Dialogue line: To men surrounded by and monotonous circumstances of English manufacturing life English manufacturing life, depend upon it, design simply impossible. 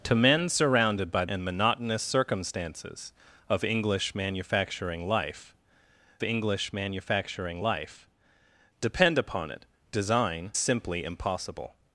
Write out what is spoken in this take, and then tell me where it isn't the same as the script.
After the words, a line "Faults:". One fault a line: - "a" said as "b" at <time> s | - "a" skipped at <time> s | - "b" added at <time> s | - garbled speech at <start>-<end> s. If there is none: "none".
To men surrounded by and monotonous circumstances of English manufacturing life English manufacturing life, depend upon it, design simply impossible.
Faults:
none